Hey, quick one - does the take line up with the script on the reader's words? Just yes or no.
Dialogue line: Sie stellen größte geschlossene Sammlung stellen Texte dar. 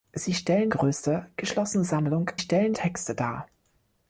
yes